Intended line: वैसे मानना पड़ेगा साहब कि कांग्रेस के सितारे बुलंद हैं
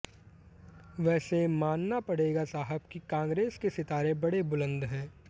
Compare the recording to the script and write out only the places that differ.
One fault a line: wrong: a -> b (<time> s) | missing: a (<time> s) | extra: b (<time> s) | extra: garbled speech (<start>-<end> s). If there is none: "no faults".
extra: बड़े (4.2 s)